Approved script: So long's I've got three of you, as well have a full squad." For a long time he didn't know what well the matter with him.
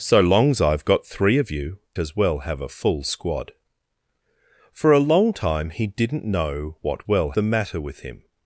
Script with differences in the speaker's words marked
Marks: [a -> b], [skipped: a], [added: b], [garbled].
So long's I've got three of you, as well have a full squad." For a long time he didn't know what well the matter with him.